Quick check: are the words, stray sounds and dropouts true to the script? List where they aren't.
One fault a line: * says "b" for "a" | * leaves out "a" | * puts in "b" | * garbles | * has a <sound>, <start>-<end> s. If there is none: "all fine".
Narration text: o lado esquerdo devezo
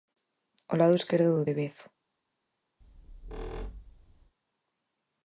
* puts in "do"
* has a squeak, 2.8-4.3 s